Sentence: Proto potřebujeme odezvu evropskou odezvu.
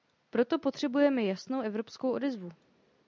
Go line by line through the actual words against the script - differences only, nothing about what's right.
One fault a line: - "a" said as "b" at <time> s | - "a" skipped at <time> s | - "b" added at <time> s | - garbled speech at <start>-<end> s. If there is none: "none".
- "odezvu" said as "jasnou" at 1.2 s